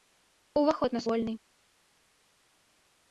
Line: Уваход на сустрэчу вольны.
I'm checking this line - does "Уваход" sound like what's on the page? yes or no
yes